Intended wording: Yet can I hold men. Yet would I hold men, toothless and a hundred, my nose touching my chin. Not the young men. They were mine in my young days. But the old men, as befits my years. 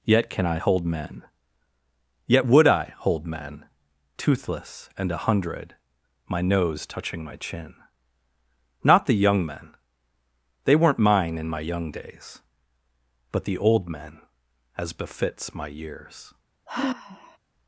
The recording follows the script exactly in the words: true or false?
false